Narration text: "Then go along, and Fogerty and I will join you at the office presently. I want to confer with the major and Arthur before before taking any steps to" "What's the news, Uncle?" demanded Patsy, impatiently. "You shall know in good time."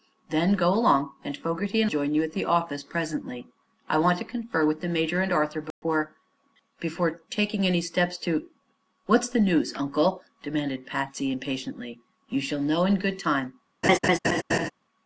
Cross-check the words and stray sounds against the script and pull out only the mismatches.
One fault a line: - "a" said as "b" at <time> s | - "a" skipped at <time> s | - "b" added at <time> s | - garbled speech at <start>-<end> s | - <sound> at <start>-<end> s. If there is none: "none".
- "I will" skipped at 1.9 s
- dropout at 5.7-5.8 s
- laugh at 13.8-14.7 s